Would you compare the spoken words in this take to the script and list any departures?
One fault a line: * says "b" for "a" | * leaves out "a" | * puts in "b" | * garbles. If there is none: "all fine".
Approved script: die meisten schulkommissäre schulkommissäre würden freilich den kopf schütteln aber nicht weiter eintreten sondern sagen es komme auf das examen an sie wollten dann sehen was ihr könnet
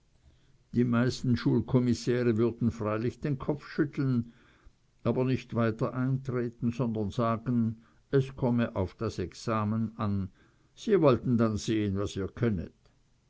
* leaves out "schulkommissäre"